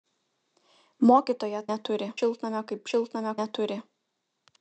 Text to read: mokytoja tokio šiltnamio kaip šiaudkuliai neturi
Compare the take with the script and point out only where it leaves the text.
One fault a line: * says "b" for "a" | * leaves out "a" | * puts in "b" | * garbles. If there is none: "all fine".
* says "neturi" for "tokio"
* says "šiltnamio" for "šiaudkuliai"